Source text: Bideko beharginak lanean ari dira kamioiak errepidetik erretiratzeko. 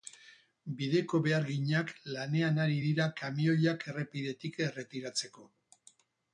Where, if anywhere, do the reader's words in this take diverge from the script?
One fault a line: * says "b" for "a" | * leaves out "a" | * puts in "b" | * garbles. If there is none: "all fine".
all fine